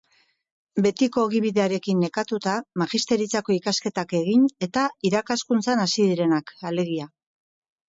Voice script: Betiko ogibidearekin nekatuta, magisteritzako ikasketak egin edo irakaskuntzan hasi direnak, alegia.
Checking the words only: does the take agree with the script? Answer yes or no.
no